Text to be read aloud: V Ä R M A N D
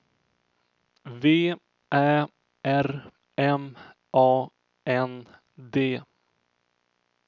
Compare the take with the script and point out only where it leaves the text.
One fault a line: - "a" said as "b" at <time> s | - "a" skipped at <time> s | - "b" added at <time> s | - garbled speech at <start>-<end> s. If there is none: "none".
none